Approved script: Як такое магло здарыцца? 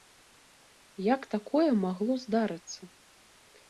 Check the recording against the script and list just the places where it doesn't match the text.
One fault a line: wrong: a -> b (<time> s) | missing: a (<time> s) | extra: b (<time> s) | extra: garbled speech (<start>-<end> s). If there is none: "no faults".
no faults